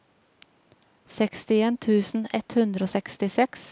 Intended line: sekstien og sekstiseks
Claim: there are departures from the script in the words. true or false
true